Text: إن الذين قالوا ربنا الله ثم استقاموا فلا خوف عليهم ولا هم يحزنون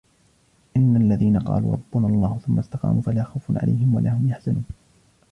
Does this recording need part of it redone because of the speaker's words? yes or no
no